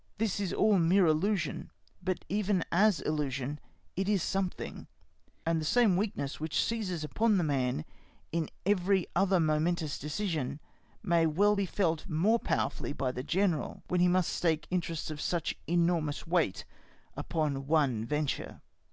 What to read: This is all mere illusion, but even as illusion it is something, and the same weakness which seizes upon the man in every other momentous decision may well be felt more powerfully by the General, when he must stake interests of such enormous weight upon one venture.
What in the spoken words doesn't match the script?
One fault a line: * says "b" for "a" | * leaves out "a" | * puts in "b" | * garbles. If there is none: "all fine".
all fine